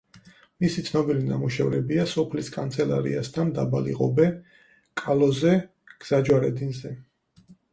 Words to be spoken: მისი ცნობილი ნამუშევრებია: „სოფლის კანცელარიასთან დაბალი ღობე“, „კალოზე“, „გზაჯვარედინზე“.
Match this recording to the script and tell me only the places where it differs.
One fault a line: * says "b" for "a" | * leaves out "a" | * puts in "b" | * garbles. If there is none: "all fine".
all fine